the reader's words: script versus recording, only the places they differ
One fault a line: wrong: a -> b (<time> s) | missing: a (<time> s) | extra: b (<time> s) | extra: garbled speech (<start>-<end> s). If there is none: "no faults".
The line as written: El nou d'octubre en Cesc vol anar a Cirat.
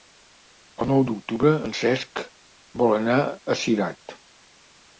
no faults